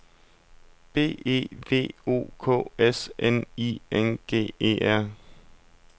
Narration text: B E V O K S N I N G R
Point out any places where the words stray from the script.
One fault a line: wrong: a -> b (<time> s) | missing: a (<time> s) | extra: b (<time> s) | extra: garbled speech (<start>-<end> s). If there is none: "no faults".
extra: E (4.6 s)